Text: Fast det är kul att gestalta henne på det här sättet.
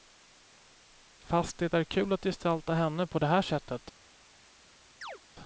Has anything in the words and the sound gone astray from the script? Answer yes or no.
yes